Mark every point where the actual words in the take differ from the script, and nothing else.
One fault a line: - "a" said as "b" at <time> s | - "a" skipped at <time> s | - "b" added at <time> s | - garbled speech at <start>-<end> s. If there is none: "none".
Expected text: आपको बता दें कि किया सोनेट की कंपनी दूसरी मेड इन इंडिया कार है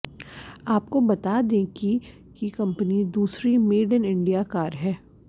- "किया सोनेट" skipped at 2.0 s